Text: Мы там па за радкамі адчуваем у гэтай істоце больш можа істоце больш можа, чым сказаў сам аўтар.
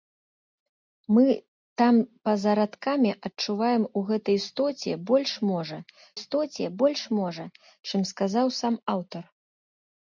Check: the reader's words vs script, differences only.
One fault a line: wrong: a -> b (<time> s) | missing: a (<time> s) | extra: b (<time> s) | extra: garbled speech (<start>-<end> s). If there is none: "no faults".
no faults